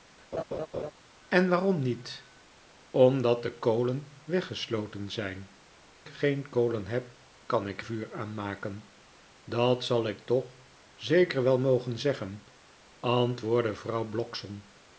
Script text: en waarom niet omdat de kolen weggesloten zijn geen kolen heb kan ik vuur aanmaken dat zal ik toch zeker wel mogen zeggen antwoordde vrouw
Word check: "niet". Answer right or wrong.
right